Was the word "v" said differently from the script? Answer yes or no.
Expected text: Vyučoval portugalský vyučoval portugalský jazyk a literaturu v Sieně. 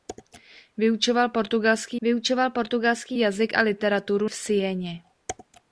no